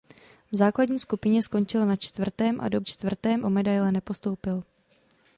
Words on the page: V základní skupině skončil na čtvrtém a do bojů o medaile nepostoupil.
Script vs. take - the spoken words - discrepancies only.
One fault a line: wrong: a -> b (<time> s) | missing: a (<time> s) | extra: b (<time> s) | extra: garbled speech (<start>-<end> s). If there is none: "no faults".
wrong: bojů -> čtvrtém (2.8 s)